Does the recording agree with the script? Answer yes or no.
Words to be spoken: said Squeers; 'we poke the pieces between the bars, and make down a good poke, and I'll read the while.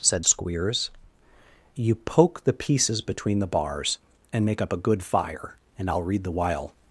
no